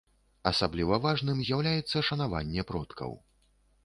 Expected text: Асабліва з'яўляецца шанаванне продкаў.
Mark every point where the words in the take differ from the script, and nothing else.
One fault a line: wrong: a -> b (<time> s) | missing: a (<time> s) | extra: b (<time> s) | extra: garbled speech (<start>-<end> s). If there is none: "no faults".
extra: важным (1.0 s)